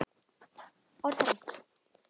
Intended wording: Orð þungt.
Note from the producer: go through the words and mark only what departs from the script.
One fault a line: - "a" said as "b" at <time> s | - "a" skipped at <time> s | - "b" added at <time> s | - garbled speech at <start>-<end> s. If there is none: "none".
none